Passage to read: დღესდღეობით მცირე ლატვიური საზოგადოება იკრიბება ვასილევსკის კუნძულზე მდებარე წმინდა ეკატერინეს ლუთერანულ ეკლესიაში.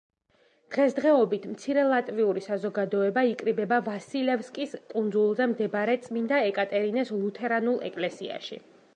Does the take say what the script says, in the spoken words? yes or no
yes